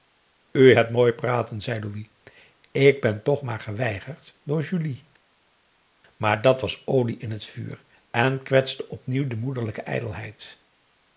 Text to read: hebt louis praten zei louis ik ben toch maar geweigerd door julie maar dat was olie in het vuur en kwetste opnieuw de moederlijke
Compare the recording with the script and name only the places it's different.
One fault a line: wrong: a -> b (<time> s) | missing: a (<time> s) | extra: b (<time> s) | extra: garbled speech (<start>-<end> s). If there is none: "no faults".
wrong: louis -> mooi (0.9 s)